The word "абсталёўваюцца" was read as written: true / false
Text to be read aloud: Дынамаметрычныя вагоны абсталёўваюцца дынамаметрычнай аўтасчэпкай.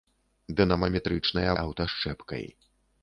false